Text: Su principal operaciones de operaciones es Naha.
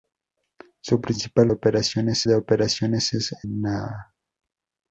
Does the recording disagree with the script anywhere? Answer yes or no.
no